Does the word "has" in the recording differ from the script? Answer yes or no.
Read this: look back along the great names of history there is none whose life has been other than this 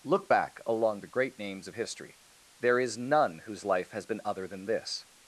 no